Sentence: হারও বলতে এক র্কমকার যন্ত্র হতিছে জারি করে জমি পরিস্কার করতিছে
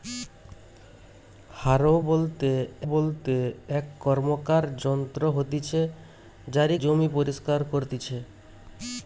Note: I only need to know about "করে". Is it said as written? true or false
false